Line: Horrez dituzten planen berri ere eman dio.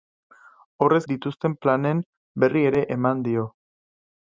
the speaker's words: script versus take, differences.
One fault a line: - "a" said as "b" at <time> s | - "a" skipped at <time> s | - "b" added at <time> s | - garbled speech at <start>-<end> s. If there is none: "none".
none